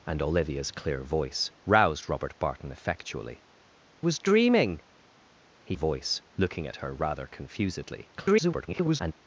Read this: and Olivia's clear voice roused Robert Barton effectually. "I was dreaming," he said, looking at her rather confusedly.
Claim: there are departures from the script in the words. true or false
true